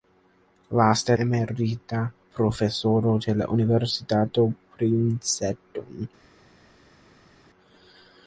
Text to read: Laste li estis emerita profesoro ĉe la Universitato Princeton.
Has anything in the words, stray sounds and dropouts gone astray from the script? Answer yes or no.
yes